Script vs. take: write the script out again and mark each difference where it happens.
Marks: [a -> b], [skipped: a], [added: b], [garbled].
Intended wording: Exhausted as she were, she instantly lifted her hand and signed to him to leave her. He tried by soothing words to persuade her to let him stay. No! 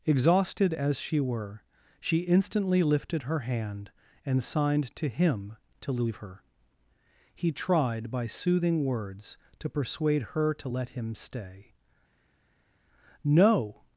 Exhausted as she were, she instantly lifted her hand and signed to him to leave her. He tried by soothing words to persuade her to let him stay. No!